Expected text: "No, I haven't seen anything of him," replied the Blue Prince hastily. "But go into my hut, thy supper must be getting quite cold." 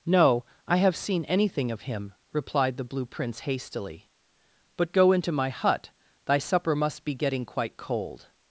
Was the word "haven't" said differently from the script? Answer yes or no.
yes